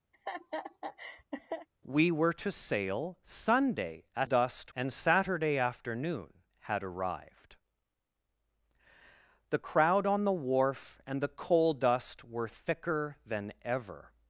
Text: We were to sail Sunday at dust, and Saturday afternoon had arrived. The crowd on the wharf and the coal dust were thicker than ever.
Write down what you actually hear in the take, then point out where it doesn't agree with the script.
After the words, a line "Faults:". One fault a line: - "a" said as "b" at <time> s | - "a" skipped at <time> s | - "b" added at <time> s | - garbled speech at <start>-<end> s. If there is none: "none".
We were to sail Sunday at dust, and Saturday afternoon had arrived. The crowd on the wharf and the coal dust were thicker than ever.
Faults:
none